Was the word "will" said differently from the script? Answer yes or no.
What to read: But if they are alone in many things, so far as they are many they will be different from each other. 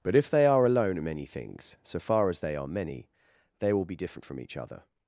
no